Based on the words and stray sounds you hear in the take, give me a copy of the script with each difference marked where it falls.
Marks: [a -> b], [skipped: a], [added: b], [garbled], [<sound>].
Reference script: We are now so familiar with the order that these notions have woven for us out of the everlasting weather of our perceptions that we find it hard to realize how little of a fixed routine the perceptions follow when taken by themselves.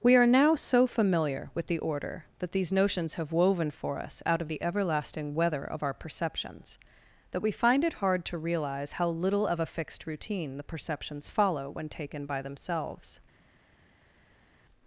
We are now so familiar with the order that these notions have woven for us out of the everlasting weather of our perceptions that we find it hard to realize how little of a fixed routine the perceptions follow when taken by themselves.